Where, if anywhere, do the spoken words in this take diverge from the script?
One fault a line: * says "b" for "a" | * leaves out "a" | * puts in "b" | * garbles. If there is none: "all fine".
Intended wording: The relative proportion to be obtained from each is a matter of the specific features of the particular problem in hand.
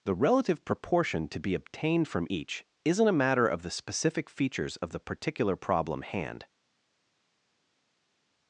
* says "isn't" for "is"
* leaves out "in"